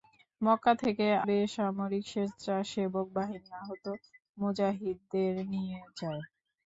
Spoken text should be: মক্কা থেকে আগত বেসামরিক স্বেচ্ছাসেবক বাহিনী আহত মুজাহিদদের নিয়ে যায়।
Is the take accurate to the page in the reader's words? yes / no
no